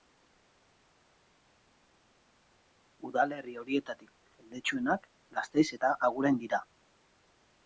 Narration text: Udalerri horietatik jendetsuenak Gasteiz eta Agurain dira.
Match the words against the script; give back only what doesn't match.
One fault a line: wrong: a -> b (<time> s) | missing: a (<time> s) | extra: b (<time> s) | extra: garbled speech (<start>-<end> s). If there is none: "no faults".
no faults